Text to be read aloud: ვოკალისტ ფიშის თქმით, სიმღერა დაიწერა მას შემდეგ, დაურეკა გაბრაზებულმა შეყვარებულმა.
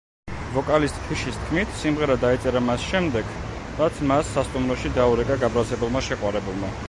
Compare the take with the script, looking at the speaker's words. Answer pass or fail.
fail